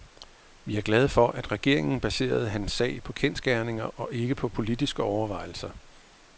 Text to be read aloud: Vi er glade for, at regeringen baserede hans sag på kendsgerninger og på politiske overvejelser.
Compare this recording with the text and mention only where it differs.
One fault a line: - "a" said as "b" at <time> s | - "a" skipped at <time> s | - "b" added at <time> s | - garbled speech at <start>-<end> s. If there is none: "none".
- "ikke" added at 4.1 s